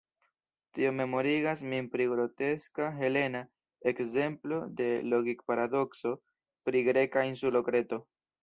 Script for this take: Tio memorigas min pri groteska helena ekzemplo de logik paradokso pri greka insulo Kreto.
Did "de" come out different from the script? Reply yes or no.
no